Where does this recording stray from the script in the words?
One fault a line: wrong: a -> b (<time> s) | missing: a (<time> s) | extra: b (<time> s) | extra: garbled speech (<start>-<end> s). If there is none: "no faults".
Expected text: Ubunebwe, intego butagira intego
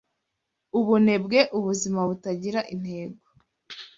wrong: intego -> ubuzima (1.6 s)